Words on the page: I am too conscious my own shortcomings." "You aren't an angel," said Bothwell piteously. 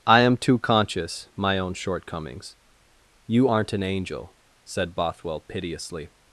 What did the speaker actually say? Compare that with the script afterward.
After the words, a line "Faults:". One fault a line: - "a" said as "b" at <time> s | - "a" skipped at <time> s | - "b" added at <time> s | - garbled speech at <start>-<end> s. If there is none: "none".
I am too conscious my own shortcomings." "You aren't an angel," said Bothwell piteously.
Faults:
none